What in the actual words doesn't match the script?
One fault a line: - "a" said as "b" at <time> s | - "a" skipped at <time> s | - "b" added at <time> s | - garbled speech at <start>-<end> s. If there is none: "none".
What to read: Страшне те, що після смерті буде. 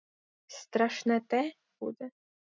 - "що після смерті" skipped at 1.5 s